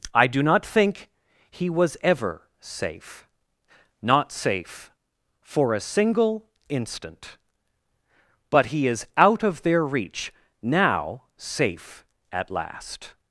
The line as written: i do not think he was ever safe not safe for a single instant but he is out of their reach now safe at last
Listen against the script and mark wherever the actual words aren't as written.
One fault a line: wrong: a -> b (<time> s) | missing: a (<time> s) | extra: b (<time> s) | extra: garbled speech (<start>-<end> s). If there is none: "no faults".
no faults